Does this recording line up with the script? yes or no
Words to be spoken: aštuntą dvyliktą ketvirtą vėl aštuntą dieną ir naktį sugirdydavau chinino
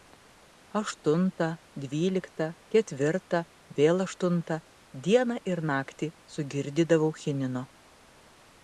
yes